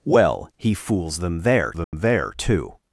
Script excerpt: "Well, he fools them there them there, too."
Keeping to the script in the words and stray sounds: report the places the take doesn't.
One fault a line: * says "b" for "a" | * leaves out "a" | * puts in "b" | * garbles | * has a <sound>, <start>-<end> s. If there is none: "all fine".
* has a dropout, 1.8-1.9 s